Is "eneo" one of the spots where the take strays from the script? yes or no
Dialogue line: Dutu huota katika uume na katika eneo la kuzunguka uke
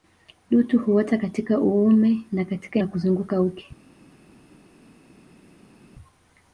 yes